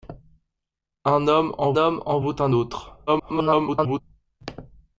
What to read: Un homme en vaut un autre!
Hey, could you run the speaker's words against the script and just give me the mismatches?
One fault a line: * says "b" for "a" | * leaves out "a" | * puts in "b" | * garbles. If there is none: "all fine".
* puts in "homme en"
* garbles